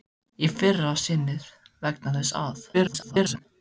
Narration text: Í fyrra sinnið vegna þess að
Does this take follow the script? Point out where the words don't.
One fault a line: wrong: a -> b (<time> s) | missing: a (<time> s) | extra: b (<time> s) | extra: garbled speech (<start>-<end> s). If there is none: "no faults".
extra: garbled speech (2.7-3.5 s)